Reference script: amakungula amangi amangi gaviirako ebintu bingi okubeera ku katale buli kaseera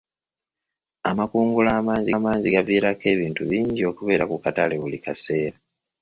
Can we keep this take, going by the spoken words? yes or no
yes